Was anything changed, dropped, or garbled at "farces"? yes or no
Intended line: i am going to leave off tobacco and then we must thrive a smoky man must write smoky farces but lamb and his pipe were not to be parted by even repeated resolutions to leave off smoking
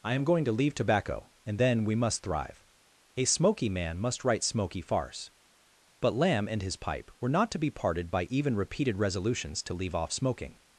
yes